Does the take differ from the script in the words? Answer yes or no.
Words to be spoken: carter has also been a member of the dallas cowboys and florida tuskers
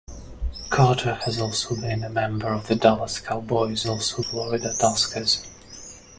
yes